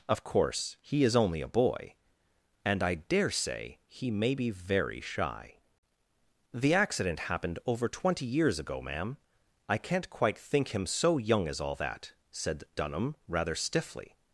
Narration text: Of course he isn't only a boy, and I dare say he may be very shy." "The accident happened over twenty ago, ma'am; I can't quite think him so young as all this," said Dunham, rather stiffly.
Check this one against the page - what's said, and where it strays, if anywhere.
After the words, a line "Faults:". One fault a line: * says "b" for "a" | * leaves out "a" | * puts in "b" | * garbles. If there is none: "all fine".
Of course he is only a boy, and I dare say he may be very shy." "The accident happened over twenty years ago, ma'am; I can't quite think him so young as all that," said Dunham, rather stiffly.
Faults:
* says "is" for "isn't"
* puts in "years"
* says "that" for "this"